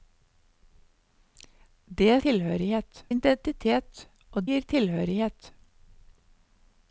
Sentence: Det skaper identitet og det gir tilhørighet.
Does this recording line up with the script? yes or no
no